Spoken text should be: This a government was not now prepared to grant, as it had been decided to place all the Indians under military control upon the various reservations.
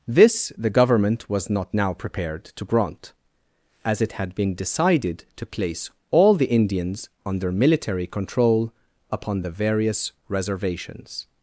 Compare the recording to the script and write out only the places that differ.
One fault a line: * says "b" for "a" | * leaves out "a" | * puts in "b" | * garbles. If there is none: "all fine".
* says "the" for "a"